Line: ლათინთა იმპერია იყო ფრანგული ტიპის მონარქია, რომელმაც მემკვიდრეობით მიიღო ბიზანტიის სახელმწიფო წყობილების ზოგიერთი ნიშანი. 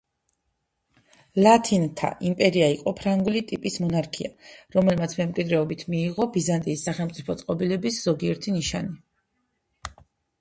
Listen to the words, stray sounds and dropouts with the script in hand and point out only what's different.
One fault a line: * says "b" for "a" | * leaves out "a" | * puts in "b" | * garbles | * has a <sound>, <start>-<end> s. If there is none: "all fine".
all fine